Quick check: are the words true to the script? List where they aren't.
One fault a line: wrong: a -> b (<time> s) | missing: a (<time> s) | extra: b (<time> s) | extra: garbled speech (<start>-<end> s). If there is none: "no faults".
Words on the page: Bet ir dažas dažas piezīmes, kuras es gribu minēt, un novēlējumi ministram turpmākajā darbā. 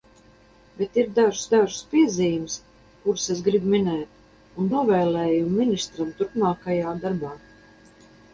no faults